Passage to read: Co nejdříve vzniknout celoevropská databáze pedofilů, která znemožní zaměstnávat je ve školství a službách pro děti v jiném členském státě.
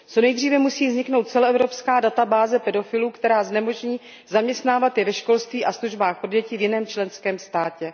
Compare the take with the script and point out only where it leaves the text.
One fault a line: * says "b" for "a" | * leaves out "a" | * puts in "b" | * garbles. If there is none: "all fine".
* puts in "musí"